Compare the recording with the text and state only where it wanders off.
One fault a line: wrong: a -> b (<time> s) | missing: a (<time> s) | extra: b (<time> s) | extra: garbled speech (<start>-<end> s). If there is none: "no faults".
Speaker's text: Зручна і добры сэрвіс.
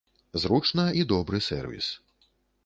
no faults